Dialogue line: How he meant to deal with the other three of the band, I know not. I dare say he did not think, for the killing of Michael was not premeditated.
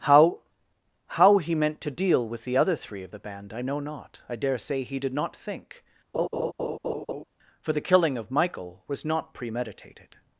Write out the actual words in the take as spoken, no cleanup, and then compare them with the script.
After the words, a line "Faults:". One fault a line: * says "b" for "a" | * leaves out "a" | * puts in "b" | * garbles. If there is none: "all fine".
How how he meant to deal with the other three of the band, I know not. I dare say he did not think, for the killing of Michael was not premeditated.
Faults:
* puts in "how"